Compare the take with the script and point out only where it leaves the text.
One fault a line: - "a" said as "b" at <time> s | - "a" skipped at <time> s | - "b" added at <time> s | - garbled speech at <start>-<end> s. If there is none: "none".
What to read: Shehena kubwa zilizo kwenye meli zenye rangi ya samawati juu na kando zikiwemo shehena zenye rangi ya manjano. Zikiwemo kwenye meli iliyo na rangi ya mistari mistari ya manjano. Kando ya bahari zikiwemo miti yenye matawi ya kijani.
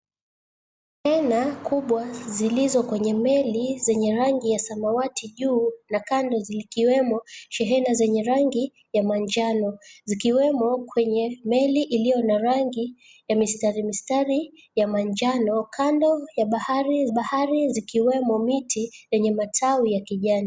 - "bahari" added at 17.1 s